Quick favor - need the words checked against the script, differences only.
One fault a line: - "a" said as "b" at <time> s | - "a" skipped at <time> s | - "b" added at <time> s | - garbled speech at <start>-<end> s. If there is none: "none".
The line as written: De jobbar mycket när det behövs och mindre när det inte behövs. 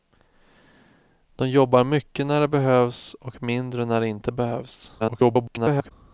- garbled speech at 5.0-5.9 s